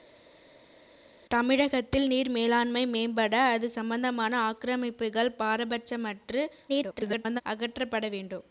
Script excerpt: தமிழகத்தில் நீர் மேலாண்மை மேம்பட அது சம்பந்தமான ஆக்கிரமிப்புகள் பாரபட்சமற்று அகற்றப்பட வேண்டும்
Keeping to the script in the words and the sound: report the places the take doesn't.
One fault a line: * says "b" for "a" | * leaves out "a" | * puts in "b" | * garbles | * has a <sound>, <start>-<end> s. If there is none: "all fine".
* garbles